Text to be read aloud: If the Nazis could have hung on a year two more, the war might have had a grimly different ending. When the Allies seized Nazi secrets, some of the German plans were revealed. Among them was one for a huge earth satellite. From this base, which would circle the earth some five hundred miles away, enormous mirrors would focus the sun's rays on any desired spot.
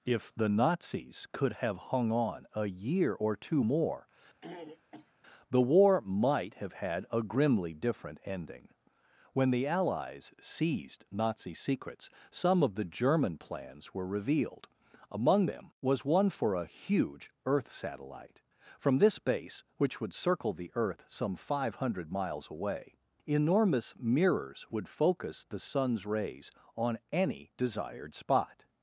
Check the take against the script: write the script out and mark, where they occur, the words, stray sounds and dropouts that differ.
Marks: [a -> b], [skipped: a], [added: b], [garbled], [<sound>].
If the Nazis could have hung on a year [added: or] two more, [throat clearing] the war might have had a grimly different ending. When the Allies seized Nazi secrets, some of the German plans were revealed. Among them was one for a huge earth satellite. From this base, which would circle the earth some five hundred miles away, enormous mirrors would focus the sun's rays on any desired spot.